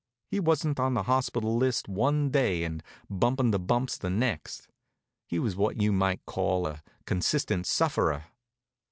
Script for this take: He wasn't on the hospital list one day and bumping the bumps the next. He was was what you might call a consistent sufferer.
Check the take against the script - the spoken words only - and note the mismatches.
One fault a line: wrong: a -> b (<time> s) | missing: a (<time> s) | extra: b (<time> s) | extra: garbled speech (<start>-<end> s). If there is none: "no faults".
missing: was (5.6 s)